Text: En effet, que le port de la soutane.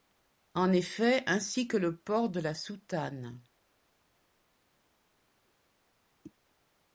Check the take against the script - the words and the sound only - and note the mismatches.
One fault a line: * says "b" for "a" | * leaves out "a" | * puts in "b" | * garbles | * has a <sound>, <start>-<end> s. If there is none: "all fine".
* puts in "ainsi"